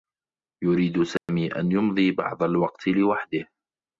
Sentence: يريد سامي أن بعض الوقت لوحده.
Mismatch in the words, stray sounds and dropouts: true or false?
true